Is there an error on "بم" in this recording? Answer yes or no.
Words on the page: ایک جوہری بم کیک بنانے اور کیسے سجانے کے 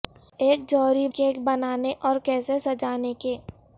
yes